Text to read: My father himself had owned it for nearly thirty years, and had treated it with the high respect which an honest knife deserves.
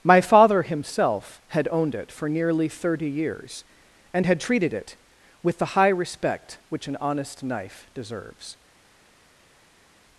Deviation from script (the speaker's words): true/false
false